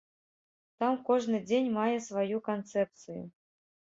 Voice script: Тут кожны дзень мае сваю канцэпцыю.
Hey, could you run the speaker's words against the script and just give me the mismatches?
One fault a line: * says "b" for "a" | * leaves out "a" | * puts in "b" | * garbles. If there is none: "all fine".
* says "Там" for "Тут"